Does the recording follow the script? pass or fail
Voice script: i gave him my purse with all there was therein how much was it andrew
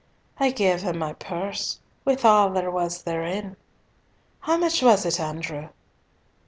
pass